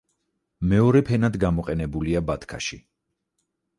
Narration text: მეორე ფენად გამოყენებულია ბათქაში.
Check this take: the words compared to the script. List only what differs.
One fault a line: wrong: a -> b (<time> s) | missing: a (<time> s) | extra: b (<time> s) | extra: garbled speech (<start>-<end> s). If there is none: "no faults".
no faults